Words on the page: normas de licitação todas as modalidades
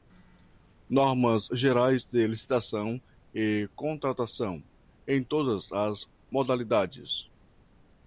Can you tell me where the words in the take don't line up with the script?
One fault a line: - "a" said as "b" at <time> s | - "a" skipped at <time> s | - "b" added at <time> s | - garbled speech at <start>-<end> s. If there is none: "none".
- "gerais" added at 1.5 s
- "e contratação em" added at 3.3 s